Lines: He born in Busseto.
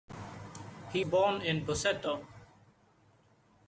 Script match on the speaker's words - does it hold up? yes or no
yes